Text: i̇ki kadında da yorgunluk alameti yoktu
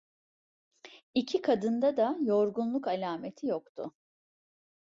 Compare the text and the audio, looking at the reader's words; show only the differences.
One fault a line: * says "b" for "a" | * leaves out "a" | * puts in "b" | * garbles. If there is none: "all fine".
all fine